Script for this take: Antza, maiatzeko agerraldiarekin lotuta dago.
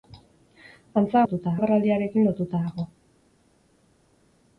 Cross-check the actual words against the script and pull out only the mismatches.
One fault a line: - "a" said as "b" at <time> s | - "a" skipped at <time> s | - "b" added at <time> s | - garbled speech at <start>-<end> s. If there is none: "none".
- "maiatzeko" said as "lotuta" at 1.2 s